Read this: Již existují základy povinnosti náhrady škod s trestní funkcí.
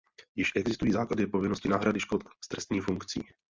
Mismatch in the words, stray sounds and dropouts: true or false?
false